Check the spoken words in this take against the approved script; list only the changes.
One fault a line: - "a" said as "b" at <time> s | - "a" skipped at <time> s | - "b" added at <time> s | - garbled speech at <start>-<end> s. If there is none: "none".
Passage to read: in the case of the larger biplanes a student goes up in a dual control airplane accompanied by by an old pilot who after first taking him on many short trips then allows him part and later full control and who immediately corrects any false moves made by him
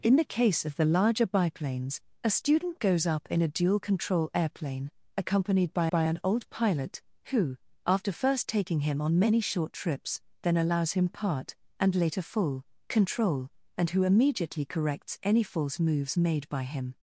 none